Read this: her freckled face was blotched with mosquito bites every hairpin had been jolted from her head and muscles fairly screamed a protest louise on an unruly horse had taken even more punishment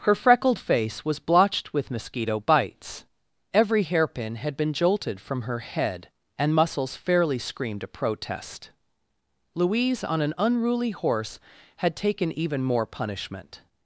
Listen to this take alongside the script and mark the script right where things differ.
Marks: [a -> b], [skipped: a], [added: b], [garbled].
her freckled face was blotched with mosquito bites every hairpin had been jolted from her head and muscles fairly screamed a protest louise on an unruly horse had taken even more punishment